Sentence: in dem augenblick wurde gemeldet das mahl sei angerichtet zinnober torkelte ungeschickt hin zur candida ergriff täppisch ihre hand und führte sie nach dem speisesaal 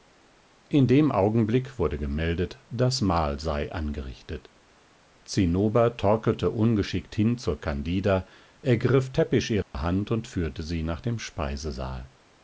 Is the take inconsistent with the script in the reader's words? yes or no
no